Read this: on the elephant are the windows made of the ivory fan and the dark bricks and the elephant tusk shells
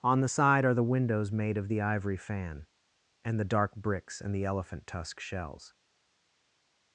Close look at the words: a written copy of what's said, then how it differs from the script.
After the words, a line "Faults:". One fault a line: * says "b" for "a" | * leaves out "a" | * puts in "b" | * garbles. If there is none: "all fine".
on the side are the windows made of the ivory fan and the dark bricks and the elephant tusk shells
Faults:
* says "side" for "elephant"